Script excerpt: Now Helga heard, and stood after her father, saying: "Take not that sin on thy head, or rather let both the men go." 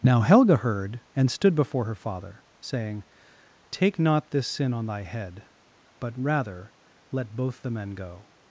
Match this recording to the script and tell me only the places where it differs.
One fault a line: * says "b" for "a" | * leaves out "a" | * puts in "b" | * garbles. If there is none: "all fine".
* says "before" for "after"
* says "this" for "that"
* says "but" for "or"